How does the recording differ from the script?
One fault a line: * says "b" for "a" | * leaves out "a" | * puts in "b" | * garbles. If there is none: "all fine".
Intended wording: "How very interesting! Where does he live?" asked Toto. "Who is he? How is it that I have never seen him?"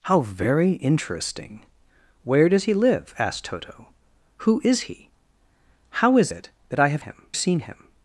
* says "him" for "never"